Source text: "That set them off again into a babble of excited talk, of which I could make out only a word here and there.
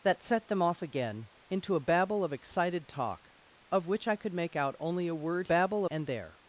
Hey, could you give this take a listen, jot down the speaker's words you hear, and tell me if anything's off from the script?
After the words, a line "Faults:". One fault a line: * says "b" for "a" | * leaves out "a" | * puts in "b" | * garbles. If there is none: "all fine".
"That set them off again into a babble of excited talk, of which I could make out only a word babble and there.
Faults:
* says "babble" for "here"